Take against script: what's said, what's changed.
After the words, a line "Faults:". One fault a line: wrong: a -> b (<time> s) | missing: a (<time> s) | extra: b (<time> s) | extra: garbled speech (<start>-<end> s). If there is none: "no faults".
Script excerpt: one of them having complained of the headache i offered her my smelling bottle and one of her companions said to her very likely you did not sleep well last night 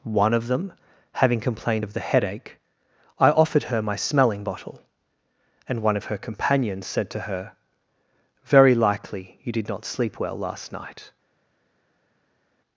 one of them having complained of the headache i offered her my smelling bottle and one of her companions said to her very likely you did not sleep well last night
Faults:
no faults